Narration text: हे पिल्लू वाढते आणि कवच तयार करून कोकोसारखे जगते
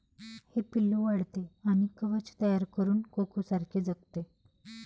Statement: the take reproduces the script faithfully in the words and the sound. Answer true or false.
true